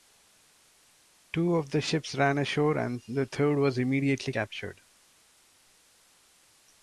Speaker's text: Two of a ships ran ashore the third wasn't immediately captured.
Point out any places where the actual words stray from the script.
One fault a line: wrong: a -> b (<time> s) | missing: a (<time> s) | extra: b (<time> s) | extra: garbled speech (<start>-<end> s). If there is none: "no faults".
wrong: a -> the (1.7 s)
extra: and (2.8 s)
wrong: wasn't -> was (3.6 s)